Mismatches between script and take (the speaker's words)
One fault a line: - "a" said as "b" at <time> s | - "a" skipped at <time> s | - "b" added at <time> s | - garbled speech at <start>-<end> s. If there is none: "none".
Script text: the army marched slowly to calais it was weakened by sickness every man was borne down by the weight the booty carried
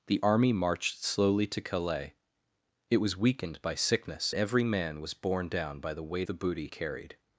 none